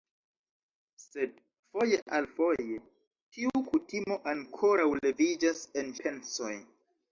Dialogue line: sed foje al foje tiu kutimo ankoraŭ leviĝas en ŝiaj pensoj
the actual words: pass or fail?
fail